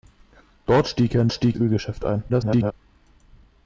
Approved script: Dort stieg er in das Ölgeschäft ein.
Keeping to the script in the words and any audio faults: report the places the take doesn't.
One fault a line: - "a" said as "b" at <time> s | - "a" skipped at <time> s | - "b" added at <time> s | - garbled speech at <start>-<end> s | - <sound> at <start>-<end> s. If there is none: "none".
- "das" said as "stieg" at 1.3 s
- garbled speech at 2.3-2.7 s